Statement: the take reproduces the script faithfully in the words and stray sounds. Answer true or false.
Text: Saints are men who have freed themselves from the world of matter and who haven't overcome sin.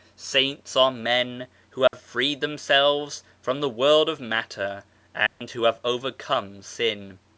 false